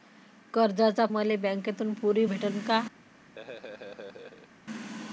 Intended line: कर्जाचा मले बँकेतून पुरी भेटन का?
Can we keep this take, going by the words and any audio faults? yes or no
no